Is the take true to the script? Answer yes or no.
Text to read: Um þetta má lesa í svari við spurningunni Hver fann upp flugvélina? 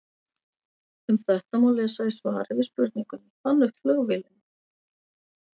no